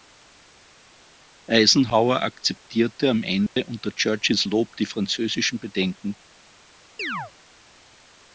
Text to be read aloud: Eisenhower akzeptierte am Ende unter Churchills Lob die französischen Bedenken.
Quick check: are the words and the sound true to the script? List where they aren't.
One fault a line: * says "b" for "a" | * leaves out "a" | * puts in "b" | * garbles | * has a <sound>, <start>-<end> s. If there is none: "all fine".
* has a dropout, 3.5-3.6 s
* has a chirp, 7.0-7.3 s